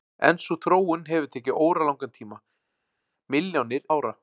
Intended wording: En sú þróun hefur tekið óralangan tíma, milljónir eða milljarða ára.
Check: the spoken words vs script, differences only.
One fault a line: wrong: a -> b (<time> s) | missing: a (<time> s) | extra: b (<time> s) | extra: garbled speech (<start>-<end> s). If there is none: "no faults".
missing: eða milljarða (3.8 s)